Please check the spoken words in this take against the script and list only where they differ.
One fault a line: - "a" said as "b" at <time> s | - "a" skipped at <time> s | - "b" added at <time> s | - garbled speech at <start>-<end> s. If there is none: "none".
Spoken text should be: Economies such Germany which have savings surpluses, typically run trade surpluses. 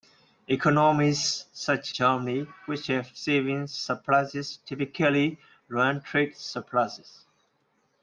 none